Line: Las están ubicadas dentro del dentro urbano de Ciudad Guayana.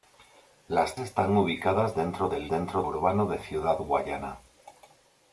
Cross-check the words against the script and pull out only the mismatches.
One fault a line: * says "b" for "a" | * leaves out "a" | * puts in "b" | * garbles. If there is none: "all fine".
all fine